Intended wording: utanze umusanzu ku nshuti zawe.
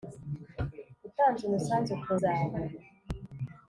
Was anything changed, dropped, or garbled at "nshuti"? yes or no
yes